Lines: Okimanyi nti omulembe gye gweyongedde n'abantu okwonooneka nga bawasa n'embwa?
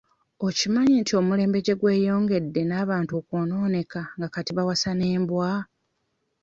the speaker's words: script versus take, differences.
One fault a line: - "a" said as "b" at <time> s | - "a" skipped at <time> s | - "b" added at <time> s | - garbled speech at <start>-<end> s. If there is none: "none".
- "kati" added at 4.3 s